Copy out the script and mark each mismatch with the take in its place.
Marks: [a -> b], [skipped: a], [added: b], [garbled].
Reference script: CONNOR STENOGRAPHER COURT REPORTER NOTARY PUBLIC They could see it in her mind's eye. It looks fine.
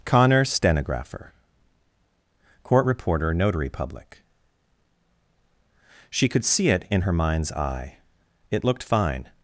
CONNOR STENOGRAPHER COURT REPORTER NOTARY PUBLIC [They -> She] could see it in her mind's eye. It [looks -> looked] fine.